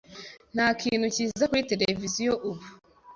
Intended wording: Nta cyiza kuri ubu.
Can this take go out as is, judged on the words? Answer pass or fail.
fail